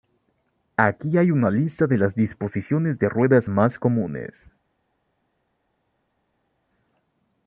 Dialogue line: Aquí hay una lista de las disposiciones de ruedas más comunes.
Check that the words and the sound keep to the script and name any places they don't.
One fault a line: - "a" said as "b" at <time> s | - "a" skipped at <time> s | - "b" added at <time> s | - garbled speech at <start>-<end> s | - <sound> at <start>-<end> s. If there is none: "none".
none